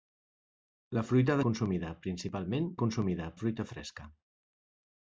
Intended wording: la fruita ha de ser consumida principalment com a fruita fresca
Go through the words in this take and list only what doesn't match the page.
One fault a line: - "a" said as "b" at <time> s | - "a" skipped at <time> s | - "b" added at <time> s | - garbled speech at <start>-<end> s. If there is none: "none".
- "ser" skipped at 1.4 s
- "com" said as "consumida" at 2.8 s